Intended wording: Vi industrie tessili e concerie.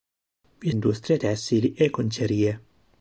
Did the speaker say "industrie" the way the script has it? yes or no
yes